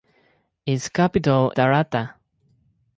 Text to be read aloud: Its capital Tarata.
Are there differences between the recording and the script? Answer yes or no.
no